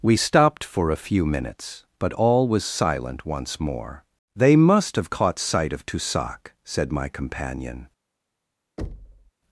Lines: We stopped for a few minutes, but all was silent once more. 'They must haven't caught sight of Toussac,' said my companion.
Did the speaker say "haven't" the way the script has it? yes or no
no